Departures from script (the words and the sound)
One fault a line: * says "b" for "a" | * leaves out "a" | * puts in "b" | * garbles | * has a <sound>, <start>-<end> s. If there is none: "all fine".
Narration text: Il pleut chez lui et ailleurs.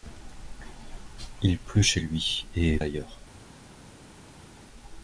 all fine